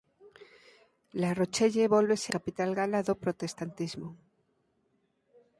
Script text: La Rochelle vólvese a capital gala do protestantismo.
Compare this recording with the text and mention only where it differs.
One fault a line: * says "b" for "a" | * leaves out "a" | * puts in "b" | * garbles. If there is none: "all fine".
* leaves out "a"